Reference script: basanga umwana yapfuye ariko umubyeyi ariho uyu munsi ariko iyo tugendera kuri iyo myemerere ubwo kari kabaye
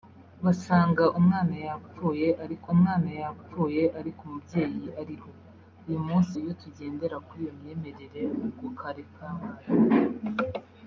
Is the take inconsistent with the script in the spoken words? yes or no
yes